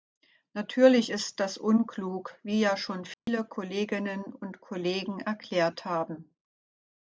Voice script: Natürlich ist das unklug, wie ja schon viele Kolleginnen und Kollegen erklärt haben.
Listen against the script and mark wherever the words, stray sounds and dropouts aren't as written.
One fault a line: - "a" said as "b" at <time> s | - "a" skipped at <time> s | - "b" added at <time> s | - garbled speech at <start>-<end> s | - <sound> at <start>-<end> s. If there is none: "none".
- dropout at 3.1-3.3 s